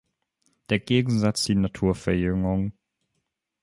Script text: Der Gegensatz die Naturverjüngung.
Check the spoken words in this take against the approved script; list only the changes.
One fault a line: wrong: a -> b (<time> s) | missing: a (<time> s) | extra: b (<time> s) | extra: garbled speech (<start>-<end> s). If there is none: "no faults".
no faults